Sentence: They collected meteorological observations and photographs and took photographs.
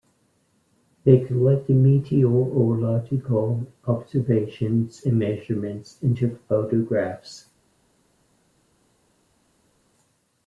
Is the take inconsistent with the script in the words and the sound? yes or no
yes